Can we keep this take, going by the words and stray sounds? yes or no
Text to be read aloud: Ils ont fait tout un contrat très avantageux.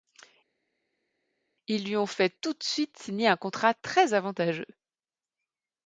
no